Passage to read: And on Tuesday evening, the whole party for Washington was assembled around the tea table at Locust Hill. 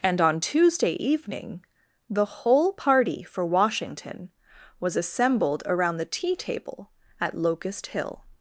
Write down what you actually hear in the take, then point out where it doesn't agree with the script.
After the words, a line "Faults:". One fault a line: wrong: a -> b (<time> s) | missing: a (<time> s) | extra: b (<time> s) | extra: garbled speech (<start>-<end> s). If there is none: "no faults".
And on Tuesday evening, the whole party for Washington was assembled around the tea table at Locust Hill.
Faults:
no faults